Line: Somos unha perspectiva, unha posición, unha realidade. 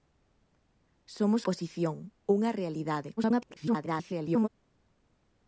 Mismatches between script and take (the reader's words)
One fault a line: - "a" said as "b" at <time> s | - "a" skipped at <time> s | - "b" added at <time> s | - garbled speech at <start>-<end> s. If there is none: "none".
- "unha perspectiva unha" skipped at 1.4 s
- garbled speech at 3.2-4.5 s